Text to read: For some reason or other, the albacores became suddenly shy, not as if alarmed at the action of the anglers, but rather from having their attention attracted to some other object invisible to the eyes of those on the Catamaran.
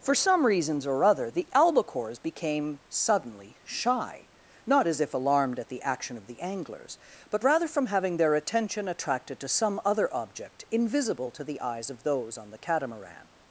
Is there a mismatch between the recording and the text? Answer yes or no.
yes